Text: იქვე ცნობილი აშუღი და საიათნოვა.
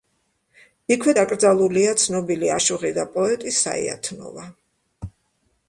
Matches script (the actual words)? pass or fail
fail